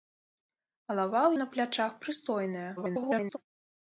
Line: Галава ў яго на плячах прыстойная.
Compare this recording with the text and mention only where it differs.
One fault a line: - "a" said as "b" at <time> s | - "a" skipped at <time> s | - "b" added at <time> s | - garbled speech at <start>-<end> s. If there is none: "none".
- "яго" skipped at 1.3 s
- garbled speech at 2.8-3.4 s